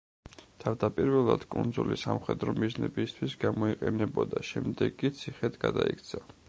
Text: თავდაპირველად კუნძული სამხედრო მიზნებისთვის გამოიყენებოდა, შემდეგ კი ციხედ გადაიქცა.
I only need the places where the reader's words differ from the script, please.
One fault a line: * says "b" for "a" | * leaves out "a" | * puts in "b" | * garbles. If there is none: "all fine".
all fine